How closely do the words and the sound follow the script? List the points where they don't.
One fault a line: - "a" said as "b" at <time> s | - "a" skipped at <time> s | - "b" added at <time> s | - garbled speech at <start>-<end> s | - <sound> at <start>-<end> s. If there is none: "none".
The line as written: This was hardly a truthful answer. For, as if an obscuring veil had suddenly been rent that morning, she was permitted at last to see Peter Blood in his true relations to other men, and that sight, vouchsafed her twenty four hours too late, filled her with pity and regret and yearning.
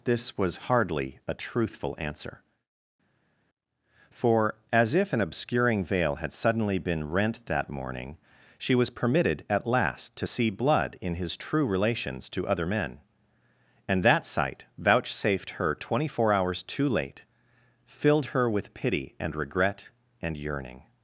- "Peter" skipped at 10.5 s